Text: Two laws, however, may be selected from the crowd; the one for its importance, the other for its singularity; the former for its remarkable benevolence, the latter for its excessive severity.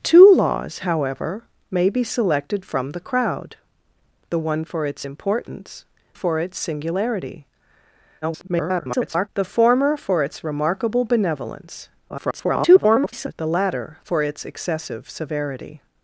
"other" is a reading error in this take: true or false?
true